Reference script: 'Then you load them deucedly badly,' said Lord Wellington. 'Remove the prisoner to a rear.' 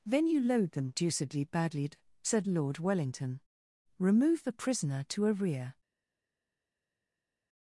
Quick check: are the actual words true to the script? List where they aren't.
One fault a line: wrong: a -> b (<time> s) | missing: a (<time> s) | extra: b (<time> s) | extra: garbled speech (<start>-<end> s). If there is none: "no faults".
no faults